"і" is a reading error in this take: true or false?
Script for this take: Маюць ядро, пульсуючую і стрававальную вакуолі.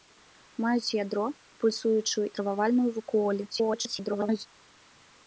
true